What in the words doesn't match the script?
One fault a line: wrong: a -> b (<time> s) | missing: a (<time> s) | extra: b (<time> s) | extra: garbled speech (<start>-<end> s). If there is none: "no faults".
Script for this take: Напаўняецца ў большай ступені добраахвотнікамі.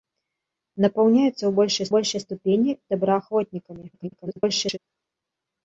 extra: большай (2.0 s)
extra: garbled speech (3.9-4.8 s)